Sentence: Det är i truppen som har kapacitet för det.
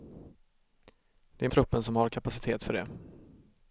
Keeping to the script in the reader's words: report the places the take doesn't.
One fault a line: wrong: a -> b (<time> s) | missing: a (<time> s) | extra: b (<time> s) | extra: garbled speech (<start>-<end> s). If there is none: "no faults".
no faults